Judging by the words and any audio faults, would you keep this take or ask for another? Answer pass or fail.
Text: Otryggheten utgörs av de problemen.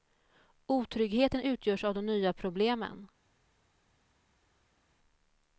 fail